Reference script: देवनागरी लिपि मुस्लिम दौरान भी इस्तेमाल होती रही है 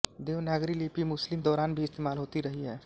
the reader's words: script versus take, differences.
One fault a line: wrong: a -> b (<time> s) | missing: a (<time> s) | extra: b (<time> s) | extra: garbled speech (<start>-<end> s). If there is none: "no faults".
no faults